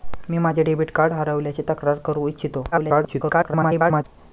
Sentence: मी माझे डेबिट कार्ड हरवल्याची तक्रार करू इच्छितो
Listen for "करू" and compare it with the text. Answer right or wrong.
right